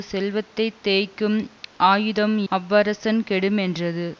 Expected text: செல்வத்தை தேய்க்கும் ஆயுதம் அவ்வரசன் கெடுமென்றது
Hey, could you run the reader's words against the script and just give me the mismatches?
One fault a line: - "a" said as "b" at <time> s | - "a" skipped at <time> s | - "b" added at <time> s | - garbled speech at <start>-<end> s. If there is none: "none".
none